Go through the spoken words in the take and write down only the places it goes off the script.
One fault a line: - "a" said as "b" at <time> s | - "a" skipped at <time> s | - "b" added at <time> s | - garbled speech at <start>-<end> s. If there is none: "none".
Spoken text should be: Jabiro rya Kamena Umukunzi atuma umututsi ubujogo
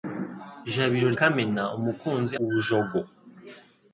- "rya" skipped at 1.1 s
- "atuma umututsi" skipped at 2.3 s